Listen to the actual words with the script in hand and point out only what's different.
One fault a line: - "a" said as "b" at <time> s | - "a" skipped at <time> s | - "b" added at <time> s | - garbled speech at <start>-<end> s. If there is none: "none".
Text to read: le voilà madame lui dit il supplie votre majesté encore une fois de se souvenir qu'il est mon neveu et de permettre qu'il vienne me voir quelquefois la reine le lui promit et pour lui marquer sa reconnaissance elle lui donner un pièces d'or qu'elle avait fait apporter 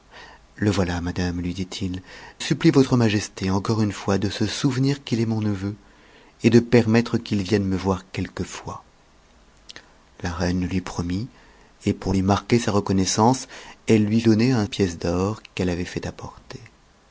none